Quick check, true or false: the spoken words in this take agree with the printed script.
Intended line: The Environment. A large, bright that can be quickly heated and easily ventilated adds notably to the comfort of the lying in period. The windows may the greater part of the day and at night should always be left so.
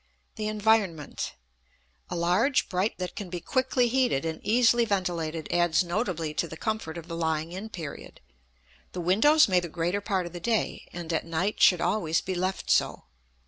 true